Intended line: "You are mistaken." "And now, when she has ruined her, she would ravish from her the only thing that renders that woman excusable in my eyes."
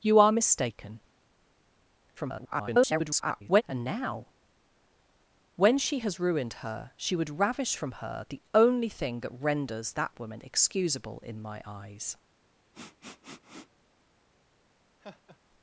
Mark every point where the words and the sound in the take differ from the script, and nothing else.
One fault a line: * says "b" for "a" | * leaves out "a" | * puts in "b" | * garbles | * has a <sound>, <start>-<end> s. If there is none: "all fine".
* garbles
* has a sniff, 12.7-13.7 s
* has a laugh, 15.0-15.4 s